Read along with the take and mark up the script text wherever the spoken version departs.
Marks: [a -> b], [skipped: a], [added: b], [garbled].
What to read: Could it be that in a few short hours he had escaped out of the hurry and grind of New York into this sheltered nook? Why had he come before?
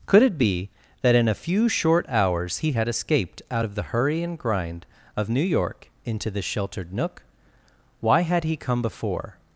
Could it be that in a few short hours he had escaped out of the hurry and grind of New York into this sheltered nook? Why had he come before?